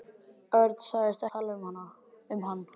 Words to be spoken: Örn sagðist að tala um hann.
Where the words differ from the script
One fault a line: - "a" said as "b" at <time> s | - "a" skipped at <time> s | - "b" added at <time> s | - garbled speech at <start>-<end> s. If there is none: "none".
none